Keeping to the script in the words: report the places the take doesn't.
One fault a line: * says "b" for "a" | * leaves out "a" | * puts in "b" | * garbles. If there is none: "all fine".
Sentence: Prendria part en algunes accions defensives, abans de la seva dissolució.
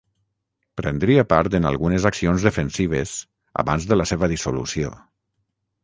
all fine